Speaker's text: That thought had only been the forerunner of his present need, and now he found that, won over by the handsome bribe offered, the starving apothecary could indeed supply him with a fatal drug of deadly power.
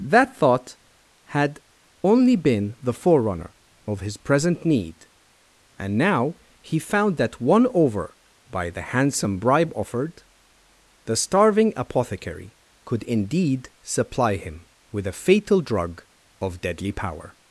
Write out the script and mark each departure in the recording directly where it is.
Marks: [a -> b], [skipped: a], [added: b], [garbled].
That thought had only been the forerunner of his present need, and now he found that, won over by the handsome bribe offered, the starving apothecary could indeed supply him with a fatal drug of deadly power.